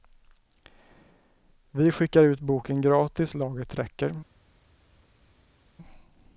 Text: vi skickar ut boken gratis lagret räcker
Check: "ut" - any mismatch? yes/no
no